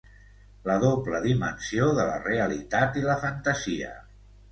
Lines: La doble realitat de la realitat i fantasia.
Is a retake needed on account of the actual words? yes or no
yes